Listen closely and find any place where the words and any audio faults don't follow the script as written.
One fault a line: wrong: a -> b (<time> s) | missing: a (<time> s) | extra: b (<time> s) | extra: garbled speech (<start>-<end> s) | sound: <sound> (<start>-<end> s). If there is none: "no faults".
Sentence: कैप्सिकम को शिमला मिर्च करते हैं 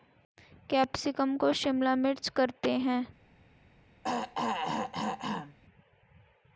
sound: throat clearing (4.0-5.6 s)